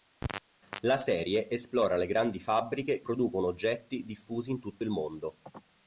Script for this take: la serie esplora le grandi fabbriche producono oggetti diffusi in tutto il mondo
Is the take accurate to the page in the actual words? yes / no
yes